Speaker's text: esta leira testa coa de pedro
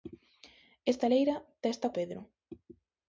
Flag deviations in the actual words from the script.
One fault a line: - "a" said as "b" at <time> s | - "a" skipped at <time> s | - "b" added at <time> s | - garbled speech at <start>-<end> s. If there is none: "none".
- "coa de" skipped at 1.9 s